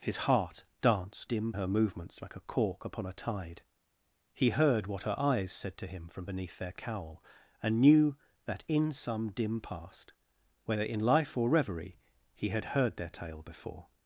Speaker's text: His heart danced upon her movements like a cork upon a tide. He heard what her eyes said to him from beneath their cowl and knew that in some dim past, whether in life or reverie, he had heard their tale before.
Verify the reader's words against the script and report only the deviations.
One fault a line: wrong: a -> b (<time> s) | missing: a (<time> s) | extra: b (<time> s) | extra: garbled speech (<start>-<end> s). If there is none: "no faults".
wrong: upon -> dim (1.2 s)